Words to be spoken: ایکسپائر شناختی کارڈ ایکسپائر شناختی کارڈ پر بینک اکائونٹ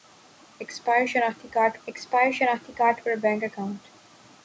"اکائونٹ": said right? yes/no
yes